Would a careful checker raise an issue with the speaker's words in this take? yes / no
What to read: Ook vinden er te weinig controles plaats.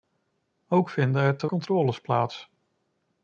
yes